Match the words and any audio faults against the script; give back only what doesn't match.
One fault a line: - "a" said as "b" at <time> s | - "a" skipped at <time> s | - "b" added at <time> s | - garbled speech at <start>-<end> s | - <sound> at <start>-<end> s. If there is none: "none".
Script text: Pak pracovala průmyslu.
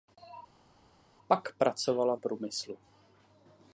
none